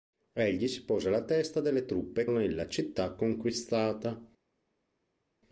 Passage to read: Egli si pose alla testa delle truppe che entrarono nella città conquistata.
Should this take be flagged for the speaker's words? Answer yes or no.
yes